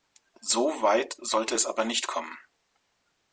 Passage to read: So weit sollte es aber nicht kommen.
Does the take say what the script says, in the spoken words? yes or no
yes